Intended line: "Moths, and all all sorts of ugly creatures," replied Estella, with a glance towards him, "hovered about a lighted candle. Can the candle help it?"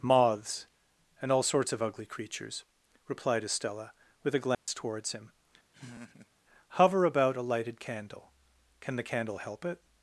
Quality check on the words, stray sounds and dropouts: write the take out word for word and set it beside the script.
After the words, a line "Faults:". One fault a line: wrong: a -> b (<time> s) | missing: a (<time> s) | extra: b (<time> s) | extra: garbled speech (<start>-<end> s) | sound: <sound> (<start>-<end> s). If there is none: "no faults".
"Moths, and all sorts of ugly creatures," replied Estella, with a glance towards him, "hover about a lighted candle. Can the candle help it?"
Faults:
missing: all (1.4 s)
sound: dropout (4.5-4.7 s)
sound: laugh (5.7-6.3 s)
wrong: hovered -> hover (6.8 s)